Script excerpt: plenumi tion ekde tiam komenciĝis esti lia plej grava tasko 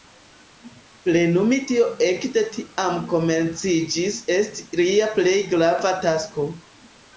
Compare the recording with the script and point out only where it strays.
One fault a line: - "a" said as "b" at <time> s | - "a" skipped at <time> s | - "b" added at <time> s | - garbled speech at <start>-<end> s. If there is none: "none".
none